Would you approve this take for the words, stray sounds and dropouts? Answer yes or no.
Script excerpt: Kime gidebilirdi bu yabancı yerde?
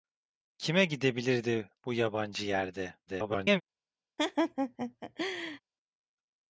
no